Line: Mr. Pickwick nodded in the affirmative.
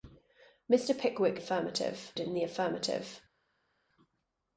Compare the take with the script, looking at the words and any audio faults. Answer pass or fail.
fail